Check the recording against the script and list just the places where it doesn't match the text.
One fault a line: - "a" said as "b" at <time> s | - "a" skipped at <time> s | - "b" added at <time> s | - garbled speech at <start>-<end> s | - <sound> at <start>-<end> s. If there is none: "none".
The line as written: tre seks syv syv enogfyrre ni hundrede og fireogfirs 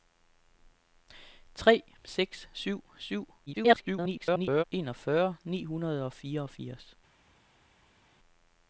- garbled speech at 3.5-4.6 s